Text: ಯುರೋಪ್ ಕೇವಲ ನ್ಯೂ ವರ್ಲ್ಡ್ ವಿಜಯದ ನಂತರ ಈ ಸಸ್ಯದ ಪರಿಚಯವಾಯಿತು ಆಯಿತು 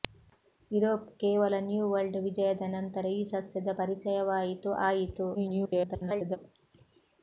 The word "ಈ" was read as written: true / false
true